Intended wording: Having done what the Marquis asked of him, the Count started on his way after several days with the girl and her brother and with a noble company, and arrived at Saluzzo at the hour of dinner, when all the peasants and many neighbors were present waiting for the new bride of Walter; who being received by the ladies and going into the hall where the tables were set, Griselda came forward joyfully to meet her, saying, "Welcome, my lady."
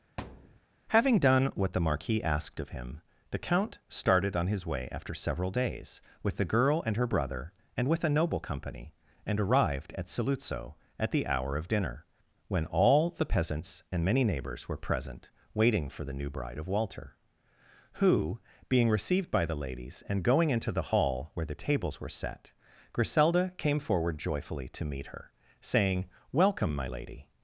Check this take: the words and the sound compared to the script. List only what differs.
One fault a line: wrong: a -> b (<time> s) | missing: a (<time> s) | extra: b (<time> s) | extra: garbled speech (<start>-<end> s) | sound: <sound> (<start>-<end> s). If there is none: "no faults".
sound: thud (0.2-0.6 s)